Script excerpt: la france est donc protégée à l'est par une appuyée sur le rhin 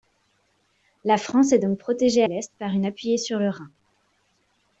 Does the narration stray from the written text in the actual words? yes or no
yes